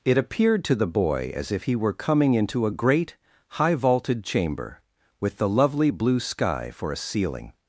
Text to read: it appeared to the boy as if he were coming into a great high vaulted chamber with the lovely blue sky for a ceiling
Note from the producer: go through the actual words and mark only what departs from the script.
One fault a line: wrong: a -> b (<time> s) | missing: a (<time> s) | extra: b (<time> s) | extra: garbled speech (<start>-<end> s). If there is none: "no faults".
no faults